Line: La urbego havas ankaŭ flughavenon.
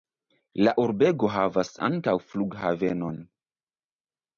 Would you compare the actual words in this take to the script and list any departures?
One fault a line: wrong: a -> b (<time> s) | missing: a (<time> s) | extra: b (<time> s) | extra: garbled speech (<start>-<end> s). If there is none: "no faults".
no faults